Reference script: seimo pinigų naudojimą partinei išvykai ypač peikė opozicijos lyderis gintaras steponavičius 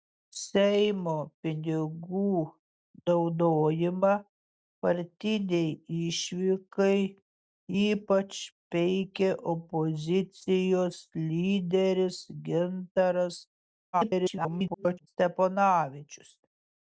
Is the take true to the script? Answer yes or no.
no